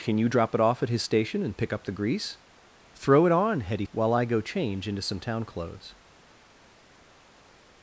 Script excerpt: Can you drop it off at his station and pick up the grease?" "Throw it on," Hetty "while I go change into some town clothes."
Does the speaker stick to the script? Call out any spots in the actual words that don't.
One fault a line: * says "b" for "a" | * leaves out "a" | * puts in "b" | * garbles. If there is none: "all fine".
all fine